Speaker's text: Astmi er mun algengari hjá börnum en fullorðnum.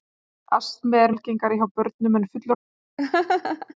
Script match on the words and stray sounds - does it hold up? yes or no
no